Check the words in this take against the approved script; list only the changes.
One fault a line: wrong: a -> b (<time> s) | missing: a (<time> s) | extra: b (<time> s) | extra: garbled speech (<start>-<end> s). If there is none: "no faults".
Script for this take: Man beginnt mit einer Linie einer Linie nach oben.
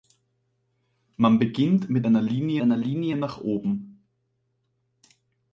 no faults